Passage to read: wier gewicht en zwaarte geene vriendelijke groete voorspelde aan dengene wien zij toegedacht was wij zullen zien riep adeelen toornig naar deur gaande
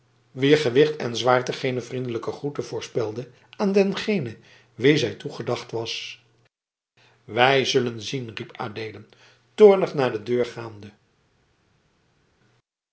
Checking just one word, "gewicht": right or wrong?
right